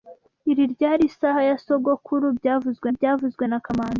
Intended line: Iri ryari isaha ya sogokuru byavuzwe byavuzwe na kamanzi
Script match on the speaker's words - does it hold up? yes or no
yes